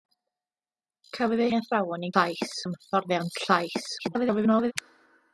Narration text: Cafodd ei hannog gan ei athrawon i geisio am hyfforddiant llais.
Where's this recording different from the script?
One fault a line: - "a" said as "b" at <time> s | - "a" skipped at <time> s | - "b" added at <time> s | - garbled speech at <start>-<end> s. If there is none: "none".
- "hannog gan" skipped at 1.5 s
- "geisio" said as "llais" at 2.1 s
- garbled speech at 4.0-4.7 s